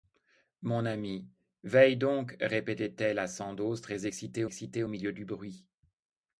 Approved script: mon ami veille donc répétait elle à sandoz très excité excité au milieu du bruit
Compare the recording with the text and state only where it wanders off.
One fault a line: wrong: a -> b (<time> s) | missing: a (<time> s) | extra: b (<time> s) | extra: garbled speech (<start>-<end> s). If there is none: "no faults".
no faults